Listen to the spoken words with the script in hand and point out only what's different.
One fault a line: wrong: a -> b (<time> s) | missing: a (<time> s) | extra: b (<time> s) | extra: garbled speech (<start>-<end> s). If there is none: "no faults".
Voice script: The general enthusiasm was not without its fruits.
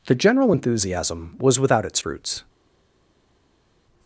missing: not (1.6 s)